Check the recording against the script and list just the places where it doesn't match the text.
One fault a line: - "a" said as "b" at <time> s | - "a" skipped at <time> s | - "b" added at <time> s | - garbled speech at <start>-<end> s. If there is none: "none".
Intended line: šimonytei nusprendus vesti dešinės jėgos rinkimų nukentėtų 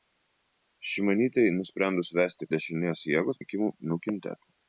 none